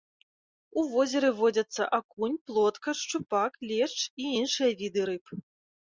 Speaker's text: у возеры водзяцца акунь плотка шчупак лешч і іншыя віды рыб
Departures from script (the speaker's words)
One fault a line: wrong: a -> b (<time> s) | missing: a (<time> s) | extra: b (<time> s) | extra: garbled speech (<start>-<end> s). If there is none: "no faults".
no faults